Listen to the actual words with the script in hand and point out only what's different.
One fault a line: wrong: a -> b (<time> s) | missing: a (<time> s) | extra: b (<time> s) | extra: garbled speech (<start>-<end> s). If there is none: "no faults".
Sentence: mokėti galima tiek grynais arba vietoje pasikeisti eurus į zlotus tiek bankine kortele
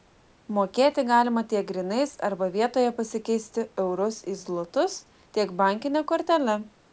no faults